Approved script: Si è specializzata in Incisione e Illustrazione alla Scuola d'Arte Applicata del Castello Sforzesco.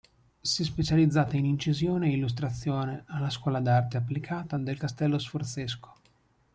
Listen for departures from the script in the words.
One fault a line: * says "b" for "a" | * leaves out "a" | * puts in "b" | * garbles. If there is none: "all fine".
all fine